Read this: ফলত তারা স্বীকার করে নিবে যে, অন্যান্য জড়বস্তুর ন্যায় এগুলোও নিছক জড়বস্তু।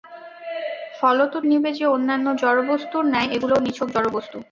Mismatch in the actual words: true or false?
true